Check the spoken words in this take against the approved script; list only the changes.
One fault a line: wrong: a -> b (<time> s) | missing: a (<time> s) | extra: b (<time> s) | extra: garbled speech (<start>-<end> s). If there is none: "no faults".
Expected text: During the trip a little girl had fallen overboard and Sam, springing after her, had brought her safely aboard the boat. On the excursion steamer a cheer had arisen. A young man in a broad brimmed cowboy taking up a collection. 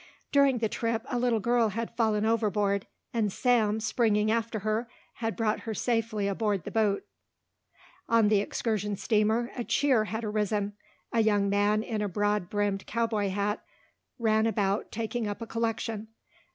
extra: hat ran about (13.3 s)